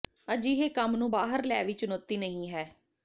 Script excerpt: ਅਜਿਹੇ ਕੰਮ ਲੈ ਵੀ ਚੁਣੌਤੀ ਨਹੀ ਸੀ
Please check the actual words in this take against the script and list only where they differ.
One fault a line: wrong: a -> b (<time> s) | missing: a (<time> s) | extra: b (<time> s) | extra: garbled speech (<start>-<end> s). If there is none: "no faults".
extra: ਨੂੰ ਬਾਹਰ (0.9 s)
wrong: ਸੀ -> ਹੈ (2.5 s)